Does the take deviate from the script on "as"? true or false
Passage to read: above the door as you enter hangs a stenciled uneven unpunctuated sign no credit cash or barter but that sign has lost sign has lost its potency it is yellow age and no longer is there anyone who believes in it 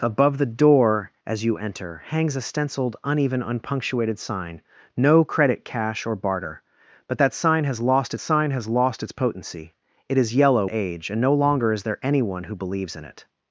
false